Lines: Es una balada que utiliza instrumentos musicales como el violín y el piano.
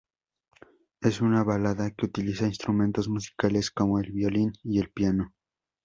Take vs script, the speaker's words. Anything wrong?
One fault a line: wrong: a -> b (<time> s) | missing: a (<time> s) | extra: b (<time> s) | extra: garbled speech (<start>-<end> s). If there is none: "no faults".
no faults